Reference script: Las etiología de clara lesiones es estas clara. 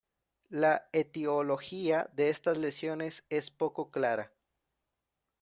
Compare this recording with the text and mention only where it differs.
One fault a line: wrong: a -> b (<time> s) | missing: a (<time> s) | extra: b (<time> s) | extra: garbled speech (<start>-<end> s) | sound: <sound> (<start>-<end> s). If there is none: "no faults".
wrong: Las -> La (0.5 s)
wrong: clara -> estas (2.3 s)
wrong: estas -> poco (3.5 s)